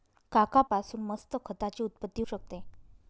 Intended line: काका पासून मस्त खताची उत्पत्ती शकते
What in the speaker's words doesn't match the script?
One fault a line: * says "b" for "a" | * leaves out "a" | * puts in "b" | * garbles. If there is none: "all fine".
all fine